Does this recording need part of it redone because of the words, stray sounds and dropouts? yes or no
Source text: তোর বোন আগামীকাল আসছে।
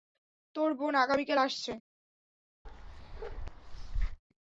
yes